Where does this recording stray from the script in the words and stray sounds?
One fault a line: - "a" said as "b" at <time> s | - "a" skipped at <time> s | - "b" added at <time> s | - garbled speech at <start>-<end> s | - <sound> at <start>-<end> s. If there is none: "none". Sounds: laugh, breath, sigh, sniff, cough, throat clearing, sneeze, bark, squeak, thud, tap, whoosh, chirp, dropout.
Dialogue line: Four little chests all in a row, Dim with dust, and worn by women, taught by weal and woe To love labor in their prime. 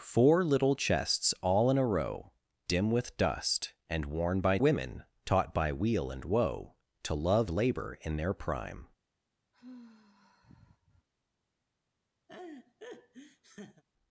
- sigh at 9.5-11.1 s
- laugh at 12.3-13.8 s